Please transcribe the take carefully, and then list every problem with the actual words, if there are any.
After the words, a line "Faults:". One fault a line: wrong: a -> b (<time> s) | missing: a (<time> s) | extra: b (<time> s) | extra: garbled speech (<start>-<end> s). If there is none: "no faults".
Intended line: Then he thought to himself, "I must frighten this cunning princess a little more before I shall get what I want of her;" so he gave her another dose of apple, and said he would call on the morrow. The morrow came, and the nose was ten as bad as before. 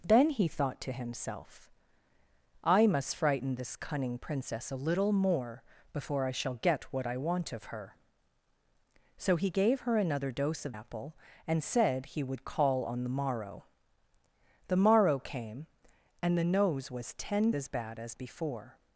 Then he thought to himself, "I must frighten this cunning princess a little more before I shall get what I want of her;" so he gave her another dose of apple, and said he would call on the morrow. The morrow came, and the nose was ten as bad as before.
Faults:
no faults